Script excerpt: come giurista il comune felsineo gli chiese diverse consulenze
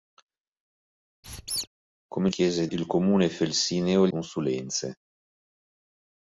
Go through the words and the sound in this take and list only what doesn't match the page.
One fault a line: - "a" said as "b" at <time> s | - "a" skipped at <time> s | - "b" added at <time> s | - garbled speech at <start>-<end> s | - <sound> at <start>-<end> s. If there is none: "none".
- squeak at 1.2-1.7 s
- "giurista" said as "chiese" at 2.3 s
- "gli chiese diverse" skipped at 4.1 s